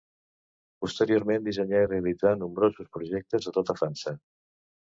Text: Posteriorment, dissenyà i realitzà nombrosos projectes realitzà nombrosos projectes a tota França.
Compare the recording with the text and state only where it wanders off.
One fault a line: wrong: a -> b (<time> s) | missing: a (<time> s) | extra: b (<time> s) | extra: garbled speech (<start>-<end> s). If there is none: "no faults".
missing: realitzà nombrosos projectes (3.5 s)